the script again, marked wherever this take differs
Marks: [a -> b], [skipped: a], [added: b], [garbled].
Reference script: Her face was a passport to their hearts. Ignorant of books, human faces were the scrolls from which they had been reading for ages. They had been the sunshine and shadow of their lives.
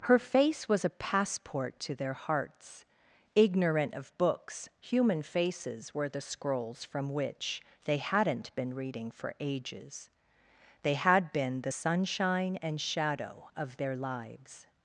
Her face was a passport to their hearts. Ignorant of books, human faces were the scrolls from which they [had -> hadn't] been reading for ages. They had been the sunshine and shadow of their lives.